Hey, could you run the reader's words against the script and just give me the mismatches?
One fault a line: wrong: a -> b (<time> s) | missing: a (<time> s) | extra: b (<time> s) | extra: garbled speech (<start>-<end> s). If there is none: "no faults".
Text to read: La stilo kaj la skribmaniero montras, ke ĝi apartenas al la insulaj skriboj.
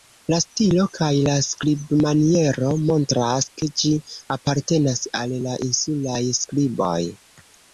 no faults